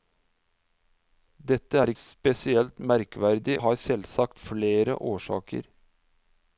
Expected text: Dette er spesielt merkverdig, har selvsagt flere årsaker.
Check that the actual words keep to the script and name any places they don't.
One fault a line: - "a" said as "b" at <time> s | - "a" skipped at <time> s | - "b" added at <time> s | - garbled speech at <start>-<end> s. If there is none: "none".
none